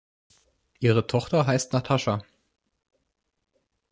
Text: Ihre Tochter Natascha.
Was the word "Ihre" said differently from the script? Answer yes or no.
no